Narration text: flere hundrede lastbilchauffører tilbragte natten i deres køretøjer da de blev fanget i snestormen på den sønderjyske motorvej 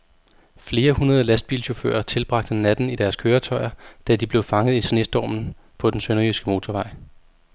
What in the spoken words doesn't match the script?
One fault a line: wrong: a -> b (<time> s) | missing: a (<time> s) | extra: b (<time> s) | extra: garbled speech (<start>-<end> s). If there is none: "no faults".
no faults